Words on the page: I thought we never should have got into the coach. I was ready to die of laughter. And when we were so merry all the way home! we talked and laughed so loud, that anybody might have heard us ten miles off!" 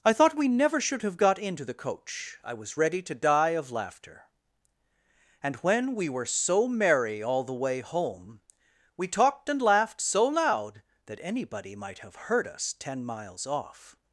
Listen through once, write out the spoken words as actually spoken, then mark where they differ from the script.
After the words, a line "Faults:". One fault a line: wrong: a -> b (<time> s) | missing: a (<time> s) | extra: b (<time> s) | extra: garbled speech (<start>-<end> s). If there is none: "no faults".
I thought we never should have got into the coach. I was ready to die of laughter. And when we were so merry all the way home! we talked and laughed so loud, that anybody might have heard us ten miles off!"
Faults:
no faults